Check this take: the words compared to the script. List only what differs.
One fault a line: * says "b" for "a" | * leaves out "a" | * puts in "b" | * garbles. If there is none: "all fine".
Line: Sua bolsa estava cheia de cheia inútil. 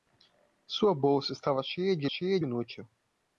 all fine